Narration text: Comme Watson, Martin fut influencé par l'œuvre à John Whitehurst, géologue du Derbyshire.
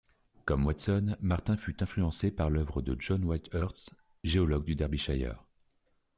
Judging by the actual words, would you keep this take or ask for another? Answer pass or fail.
fail